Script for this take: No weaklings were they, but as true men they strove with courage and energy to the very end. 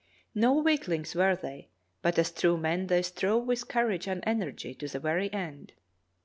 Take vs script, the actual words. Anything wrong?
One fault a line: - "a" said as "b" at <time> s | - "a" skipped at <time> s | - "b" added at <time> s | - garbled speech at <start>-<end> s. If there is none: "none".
none